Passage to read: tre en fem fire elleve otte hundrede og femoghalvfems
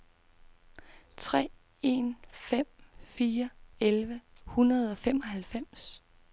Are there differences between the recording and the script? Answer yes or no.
yes